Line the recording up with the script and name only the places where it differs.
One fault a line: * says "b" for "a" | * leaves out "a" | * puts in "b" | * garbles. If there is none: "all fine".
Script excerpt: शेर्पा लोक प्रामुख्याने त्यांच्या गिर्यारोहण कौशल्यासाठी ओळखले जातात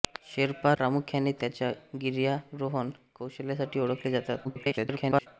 * leaves out "लोक"
* garbles